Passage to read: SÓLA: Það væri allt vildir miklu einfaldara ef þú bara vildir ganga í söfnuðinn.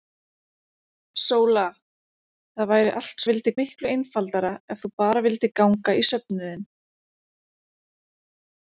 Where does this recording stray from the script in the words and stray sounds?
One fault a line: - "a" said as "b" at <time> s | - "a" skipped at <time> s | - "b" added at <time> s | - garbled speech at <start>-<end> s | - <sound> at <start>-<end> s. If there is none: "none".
none